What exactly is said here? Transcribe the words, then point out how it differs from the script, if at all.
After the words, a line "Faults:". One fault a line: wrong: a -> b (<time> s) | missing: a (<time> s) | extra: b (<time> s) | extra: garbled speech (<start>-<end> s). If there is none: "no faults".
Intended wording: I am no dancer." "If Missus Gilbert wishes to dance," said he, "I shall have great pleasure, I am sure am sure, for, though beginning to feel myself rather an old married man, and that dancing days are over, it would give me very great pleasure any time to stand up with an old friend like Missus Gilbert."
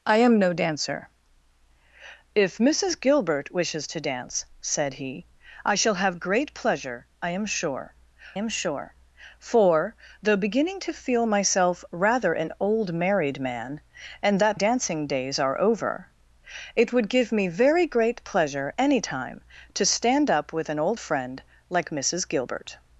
I am no dancer." "If Missus Gilbert wishes to dance," said he, "I shall have great pleasure, I am sure am sure, for, though beginning to feel myself rather an old married man, and that dancing days are over, it would give me very great pleasure any time to stand up with an old friend like Missus Gilbert."
Faults:
no faults